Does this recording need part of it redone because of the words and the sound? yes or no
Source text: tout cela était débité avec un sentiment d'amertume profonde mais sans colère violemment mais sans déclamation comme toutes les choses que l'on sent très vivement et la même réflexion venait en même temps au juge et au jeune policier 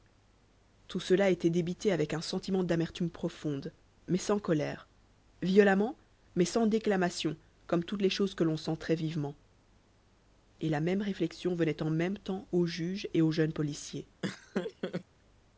yes